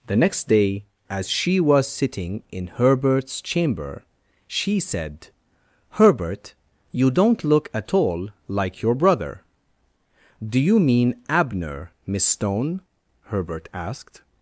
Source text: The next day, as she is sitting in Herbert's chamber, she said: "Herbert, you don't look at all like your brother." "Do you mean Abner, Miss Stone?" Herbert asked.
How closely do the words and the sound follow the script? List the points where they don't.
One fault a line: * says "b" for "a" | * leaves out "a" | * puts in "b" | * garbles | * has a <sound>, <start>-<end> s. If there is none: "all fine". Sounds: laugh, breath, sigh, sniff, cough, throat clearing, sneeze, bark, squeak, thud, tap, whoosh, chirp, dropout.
* says "was" for "is"